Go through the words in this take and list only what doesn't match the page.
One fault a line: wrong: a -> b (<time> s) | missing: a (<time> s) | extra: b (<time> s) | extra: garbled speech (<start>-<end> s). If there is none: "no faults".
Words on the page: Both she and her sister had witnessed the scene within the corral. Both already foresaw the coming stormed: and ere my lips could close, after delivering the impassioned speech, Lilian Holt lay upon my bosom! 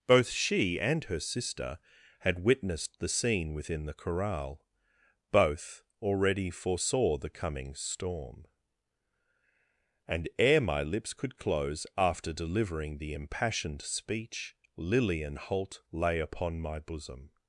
wrong: stormed -> storm (7.8 s)